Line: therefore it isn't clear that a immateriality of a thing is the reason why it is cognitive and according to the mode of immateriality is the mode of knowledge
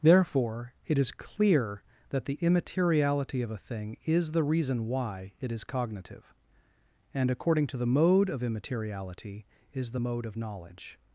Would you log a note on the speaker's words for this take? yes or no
yes